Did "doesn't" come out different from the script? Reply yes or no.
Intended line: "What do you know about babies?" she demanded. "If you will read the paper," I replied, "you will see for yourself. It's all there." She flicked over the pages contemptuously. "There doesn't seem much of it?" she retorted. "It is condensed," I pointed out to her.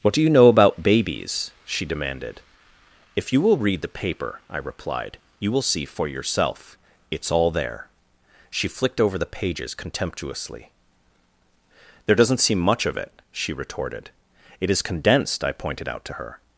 no